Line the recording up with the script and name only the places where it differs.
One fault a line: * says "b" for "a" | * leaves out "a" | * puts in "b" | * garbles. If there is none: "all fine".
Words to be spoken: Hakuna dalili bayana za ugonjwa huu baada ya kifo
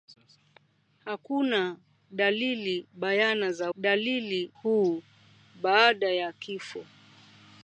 * says "dalili" for "ugonjwa"